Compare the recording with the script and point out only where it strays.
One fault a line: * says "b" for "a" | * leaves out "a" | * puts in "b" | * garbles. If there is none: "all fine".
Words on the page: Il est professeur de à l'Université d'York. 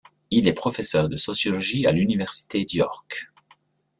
* puts in "sociologie"